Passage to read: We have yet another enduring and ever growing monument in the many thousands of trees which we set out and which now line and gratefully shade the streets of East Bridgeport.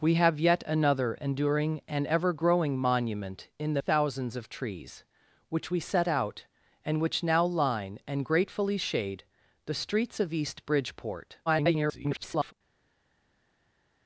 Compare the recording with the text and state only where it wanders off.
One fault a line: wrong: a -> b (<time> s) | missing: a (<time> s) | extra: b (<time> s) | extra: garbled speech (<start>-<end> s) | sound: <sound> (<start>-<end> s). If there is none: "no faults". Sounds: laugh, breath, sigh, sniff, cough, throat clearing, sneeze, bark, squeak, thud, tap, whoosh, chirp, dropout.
missing: many (3.8 s)
extra: garbled speech (11.5-12.5 s)